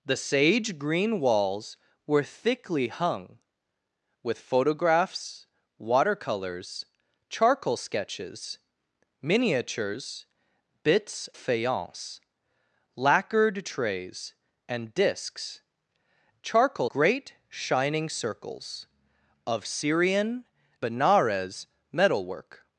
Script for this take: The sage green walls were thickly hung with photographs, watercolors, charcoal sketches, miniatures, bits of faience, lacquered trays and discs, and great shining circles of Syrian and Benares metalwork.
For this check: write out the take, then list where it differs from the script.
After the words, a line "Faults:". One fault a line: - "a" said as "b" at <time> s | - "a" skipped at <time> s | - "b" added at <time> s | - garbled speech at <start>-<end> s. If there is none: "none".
The sage green walls were thickly hung with photographs, watercolors, charcoal sketches, miniatures, bits faience, lacquered trays and discs, charcoal great shining circles of Syrian Benares metalwork.
Faults:
- "of" skipped at 11.3 s
- "and" said as "charcoal" at 16.4 s
- "and" skipped at 20.5 s